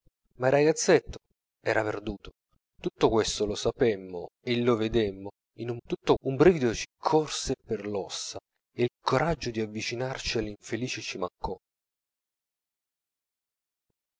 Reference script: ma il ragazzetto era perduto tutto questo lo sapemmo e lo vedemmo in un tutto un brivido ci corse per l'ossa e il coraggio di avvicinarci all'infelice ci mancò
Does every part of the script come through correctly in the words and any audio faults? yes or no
yes